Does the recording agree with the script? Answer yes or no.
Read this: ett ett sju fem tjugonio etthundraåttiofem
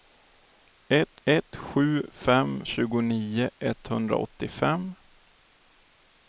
yes